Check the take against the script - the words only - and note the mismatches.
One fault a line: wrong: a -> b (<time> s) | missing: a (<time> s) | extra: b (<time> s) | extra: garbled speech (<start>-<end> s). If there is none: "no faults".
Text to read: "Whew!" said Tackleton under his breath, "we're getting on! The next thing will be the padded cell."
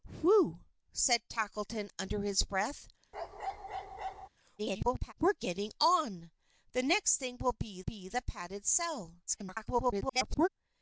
extra: garbled speech (4.6-5.1 s)
extra: be (7.8 s)
extra: garbled speech (9.3-10.5 s)